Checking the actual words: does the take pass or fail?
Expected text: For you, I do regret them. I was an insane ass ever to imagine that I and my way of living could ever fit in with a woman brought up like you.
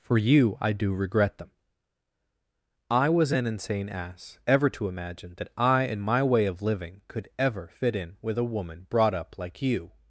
pass